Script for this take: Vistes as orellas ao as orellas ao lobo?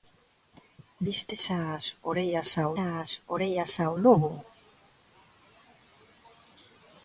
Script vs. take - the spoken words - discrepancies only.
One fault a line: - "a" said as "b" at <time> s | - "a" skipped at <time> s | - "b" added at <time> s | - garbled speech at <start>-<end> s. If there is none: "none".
none